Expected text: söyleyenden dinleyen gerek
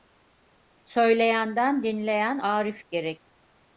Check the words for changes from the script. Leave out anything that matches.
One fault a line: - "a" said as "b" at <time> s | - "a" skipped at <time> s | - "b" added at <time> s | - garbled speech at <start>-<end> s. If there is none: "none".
- "arif" added at 2.3 s